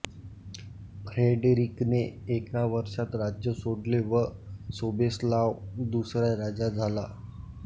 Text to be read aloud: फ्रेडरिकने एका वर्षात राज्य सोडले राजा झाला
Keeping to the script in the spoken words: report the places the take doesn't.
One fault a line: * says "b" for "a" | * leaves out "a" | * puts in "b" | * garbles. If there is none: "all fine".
* puts in "व सोबेस्लाव दुसरा"